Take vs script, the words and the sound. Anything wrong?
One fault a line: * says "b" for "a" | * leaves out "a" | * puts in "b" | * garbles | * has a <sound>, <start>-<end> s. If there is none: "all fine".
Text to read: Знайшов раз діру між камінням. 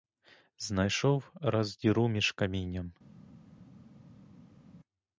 all fine